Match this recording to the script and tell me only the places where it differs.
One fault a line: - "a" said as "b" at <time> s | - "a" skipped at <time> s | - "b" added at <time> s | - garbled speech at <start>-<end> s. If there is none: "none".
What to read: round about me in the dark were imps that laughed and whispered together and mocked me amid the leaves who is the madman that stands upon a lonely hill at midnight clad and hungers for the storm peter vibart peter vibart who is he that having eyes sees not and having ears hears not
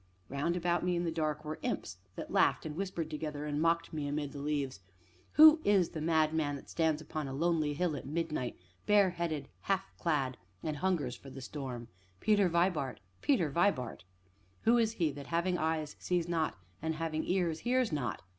- "bareheaded half" added at 8.9 s